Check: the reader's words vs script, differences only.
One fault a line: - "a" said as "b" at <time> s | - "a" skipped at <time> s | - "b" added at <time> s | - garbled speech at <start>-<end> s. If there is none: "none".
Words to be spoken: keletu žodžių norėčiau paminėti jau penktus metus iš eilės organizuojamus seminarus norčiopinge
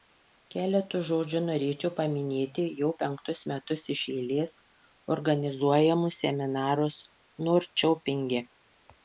none